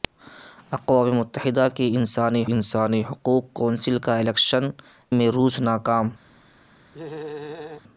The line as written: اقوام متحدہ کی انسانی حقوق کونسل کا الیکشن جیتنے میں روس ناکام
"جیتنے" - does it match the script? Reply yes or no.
no